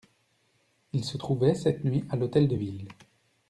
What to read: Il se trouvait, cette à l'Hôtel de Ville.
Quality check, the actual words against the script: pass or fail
fail